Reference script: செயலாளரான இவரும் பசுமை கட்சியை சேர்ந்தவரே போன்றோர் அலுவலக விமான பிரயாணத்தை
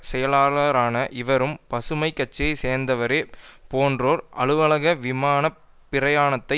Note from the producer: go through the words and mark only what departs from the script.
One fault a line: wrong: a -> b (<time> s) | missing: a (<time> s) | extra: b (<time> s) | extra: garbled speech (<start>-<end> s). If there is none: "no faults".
no faults